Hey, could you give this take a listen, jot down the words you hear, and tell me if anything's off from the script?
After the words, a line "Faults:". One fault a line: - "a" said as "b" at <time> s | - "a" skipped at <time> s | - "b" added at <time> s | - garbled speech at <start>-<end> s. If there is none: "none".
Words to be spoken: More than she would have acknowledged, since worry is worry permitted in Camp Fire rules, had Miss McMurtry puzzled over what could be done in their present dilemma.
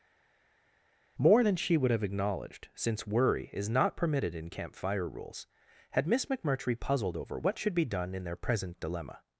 More than she would have acknowledged, since worry is not permitted in Camp Fire rules, had Miss McMurtry puzzled over what should be done in their present dilemma.
Faults:
- "worry" said as "not" at 3.7 s
- "could" said as "should" at 7.6 s